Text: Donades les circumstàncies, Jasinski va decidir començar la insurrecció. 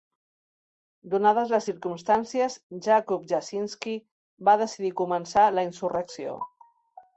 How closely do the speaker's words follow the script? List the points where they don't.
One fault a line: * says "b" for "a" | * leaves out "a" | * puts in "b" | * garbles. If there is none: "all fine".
* puts in "Jakub"